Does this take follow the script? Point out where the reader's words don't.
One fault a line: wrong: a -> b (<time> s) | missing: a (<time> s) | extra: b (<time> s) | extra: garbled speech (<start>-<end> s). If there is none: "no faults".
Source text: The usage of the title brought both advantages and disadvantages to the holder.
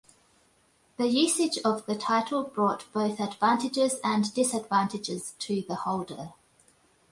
no faults